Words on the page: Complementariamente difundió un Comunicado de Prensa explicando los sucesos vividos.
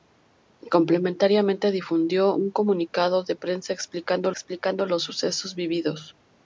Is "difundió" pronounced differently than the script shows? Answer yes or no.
no